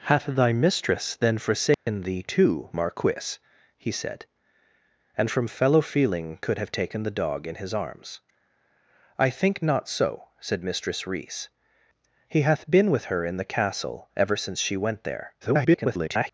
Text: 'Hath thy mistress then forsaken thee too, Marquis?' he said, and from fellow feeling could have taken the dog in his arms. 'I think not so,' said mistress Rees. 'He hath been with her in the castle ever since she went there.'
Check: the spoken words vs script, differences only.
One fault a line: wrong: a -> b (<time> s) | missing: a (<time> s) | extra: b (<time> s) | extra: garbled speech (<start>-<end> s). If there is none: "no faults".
extra: garbled speech (15.4-16.3 s)